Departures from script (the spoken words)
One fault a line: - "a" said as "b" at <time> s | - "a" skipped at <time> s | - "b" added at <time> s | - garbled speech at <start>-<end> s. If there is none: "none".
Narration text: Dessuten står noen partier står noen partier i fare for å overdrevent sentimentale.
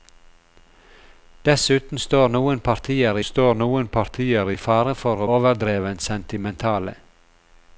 none